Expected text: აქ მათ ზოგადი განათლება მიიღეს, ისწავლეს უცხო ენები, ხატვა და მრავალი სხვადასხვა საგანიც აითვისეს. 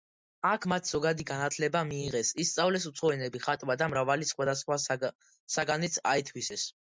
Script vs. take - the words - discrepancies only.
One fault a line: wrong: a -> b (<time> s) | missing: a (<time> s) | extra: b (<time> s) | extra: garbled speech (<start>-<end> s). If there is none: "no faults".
no faults